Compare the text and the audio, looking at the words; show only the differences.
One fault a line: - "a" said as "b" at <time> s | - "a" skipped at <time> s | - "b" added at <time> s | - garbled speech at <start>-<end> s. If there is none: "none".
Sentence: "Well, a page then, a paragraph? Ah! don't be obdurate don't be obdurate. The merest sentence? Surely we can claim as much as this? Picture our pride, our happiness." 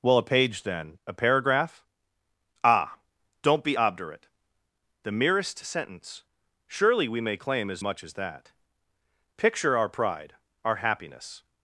- "don't be obdurate" skipped at 4.3 s
- "can" said as "may" at 7.2 s
- "this" said as "that" at 8.1 s